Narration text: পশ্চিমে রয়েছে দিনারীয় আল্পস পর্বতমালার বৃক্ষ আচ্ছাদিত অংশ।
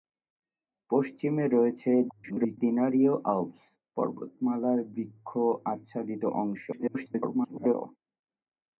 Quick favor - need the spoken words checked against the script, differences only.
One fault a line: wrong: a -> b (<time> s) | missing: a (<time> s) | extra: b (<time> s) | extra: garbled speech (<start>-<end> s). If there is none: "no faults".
extra: garbled speech (2.1-2.6 s)
extra: garbled speech (6.7-7.7 s)